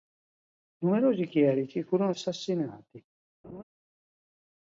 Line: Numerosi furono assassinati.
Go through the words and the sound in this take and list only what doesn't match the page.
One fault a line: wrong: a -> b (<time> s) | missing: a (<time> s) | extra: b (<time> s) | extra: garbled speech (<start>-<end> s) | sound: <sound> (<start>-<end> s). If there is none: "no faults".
extra: chierici (1.3 s)
sound: laugh (3.4-3.6 s)